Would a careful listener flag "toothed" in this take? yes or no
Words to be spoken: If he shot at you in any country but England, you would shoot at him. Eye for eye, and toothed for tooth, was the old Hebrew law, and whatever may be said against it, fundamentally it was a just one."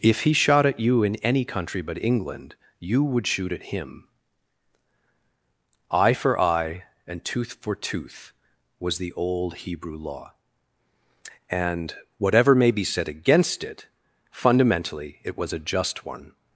yes